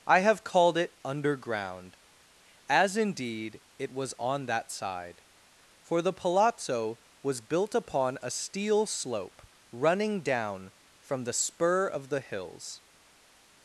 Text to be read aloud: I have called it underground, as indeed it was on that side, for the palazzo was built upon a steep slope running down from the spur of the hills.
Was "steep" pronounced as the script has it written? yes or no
no